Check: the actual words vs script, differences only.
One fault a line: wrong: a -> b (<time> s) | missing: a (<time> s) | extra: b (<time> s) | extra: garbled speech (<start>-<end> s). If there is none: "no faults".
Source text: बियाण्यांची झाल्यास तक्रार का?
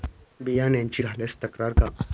no faults